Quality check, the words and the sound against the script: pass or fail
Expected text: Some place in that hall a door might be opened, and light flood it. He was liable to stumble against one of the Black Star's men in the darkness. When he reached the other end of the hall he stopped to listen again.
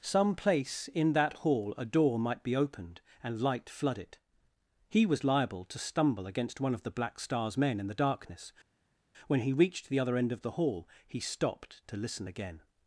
pass